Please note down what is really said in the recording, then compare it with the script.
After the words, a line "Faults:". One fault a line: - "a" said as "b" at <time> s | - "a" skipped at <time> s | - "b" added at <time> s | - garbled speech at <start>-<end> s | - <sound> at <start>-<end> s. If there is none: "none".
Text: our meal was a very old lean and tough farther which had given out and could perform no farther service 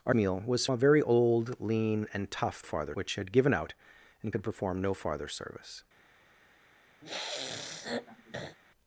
our meal was a very old lean and tough farther which had given out and could perform no farther service
Faults:
- sniff at 7.0-8.6 s